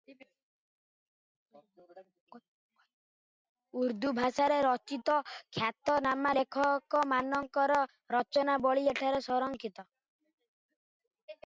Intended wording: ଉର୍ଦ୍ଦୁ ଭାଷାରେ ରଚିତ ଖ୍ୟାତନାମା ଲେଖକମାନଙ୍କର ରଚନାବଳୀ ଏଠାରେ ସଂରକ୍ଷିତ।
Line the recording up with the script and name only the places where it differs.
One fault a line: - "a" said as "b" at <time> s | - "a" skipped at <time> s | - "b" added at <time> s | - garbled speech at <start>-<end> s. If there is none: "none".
none